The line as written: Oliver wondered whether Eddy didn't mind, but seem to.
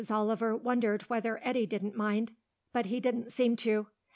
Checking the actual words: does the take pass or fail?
fail